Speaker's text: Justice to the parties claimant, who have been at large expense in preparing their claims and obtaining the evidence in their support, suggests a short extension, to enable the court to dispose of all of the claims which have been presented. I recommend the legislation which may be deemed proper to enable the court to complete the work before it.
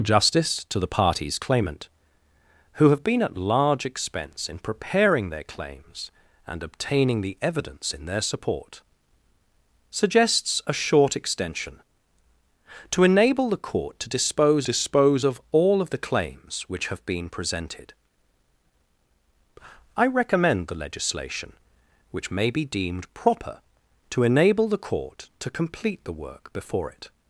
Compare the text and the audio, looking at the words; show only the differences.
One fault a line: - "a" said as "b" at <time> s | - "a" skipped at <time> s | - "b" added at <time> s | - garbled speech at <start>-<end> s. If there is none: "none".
- "dispose" added at 14.6 s